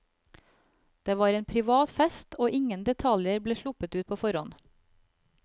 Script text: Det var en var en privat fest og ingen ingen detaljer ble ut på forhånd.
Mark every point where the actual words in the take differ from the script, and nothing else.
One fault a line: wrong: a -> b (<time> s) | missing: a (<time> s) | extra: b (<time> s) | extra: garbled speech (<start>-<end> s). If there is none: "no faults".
missing: var en (1.4 s)
missing: ingen (2.9 s)
extra: sluppet (3.6 s)